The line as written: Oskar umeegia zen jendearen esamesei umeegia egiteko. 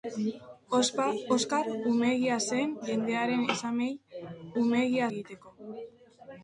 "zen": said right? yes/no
yes